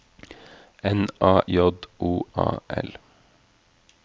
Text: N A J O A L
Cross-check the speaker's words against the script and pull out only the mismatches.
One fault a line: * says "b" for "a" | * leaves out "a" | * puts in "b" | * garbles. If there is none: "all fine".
all fine